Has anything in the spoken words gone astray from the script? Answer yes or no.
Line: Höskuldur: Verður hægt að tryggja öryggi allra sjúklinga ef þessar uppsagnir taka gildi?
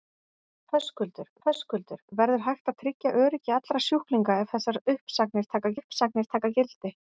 yes